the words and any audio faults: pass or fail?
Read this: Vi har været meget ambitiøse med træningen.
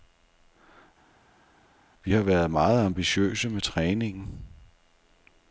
pass